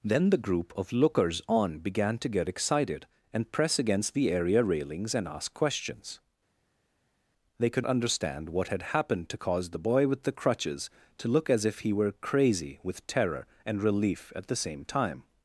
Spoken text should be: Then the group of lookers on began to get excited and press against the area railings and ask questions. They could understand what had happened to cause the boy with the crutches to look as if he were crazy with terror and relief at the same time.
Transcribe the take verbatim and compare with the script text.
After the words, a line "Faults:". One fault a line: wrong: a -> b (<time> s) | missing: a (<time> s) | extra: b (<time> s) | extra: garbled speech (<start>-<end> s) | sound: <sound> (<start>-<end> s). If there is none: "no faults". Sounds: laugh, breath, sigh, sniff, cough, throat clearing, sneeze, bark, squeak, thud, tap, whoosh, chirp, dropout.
Then the group of lookers on began to get excited and press against the area railings and ask questions. They could understand what had happened to cause the boy with the crutches to look as if he were crazy with terror and relief at the same time.
Faults:
no faults